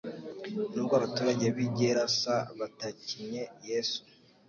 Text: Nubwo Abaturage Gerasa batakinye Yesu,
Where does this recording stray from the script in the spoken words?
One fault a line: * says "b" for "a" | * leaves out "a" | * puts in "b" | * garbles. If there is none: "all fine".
* puts in "b'i"